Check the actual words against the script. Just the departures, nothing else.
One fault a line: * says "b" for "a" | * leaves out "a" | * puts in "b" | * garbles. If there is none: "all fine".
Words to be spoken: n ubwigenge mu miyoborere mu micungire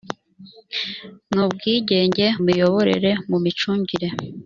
* leaves out "mu"